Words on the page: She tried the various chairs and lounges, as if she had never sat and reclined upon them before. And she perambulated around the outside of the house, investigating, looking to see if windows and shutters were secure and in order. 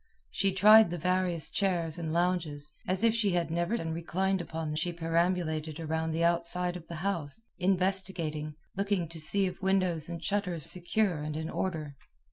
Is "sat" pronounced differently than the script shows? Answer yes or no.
yes